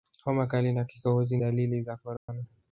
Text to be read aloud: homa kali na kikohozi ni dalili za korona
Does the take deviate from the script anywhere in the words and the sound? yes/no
yes